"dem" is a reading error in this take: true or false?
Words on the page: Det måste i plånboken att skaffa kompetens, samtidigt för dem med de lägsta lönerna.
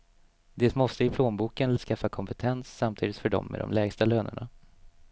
false